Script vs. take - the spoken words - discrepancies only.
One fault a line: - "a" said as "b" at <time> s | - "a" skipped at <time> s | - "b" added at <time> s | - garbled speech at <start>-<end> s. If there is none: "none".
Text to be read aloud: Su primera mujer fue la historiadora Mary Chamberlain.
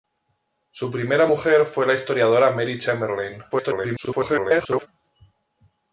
- garbled speech at 3.5-4.9 s